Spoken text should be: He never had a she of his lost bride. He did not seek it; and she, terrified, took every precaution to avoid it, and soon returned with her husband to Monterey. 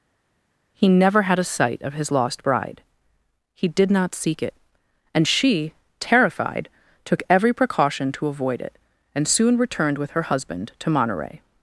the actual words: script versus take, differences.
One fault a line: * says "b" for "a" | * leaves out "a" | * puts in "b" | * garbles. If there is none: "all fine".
* says "sight" for "she"